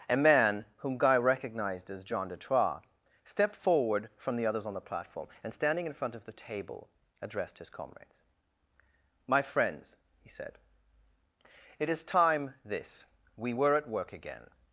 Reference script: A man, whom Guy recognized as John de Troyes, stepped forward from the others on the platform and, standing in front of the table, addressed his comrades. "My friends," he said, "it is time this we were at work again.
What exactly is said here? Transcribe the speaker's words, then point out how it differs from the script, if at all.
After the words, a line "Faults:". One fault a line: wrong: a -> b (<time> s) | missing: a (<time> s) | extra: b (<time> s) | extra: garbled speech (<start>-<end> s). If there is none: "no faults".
A man, whom Guy recognized as John de Troyes, stepped forward from the others on the platform and, standing in front of the table, addressed his comrades. "My friends," he said, "it is time this we were at work again.
Faults:
no faults